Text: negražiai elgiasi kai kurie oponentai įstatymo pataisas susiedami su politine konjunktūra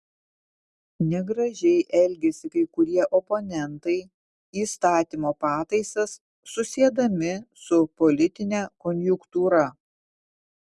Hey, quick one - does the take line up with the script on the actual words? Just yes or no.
yes